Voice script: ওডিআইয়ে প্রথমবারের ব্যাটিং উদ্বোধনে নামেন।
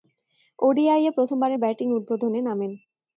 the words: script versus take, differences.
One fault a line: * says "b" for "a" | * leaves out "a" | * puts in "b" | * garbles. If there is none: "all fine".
all fine